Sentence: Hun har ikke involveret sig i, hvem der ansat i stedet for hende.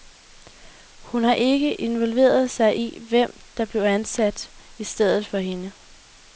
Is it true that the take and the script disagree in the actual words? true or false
true